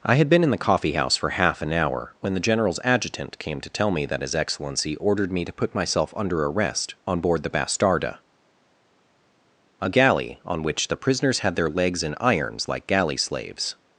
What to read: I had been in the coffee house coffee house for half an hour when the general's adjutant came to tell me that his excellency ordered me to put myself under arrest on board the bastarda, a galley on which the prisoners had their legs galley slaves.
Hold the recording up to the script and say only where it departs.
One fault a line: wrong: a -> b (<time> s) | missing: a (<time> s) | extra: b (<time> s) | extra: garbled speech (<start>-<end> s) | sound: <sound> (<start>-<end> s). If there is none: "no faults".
missing: coffee house (1.1 s)
extra: in irons like (12.0 s)